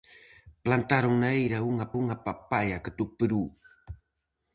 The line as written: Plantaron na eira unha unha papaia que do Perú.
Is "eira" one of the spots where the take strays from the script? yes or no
no